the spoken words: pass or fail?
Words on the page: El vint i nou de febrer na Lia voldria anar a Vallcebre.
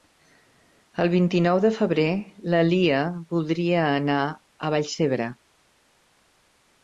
pass